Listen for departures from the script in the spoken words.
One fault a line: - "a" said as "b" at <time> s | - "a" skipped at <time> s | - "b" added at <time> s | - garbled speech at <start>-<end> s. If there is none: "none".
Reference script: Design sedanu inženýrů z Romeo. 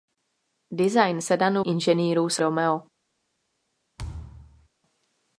none